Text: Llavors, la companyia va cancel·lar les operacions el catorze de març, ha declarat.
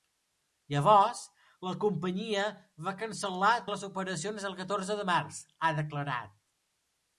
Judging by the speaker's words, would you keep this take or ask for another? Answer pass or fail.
pass